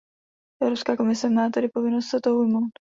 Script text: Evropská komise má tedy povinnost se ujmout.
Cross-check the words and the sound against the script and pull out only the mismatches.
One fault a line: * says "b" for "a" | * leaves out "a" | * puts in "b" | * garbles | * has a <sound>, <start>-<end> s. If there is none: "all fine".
* puts in "toho"